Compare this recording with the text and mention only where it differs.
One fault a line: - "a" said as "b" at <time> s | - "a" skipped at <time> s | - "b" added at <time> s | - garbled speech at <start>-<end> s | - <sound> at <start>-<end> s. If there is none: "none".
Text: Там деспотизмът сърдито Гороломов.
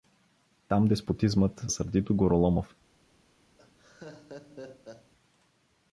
- laugh at 3.6-5.1 s